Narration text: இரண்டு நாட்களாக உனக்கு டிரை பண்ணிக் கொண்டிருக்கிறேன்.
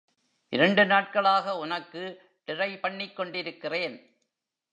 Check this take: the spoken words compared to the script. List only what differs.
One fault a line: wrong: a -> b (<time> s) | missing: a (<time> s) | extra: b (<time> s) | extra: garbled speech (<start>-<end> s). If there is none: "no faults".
no faults